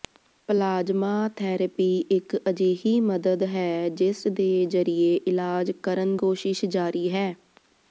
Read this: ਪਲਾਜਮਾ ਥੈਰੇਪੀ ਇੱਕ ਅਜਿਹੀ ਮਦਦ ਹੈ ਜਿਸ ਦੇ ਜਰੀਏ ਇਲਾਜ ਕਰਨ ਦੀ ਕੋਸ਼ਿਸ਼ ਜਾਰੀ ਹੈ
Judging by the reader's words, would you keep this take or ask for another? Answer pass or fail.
fail